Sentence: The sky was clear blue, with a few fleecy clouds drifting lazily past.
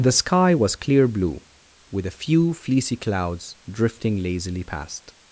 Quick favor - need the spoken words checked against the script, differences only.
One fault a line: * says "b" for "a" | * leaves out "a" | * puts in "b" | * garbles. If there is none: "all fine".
all fine